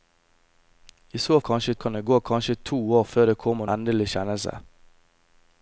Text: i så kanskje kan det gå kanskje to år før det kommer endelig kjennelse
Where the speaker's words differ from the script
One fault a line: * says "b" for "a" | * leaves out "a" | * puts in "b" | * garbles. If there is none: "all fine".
all fine